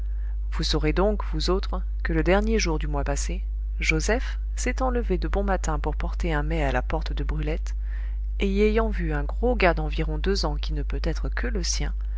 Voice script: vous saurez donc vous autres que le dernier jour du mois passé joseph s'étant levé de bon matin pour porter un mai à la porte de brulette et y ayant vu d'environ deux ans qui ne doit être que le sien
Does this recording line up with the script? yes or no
no